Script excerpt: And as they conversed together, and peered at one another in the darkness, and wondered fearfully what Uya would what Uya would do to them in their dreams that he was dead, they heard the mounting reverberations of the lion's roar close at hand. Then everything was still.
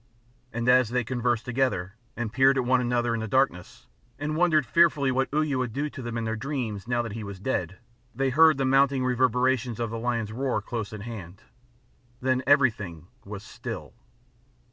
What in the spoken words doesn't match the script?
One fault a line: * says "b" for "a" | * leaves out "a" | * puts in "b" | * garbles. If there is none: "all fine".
* leaves out "what Uya would"
* puts in "now"